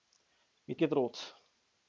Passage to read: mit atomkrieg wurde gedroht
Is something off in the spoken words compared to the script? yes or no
yes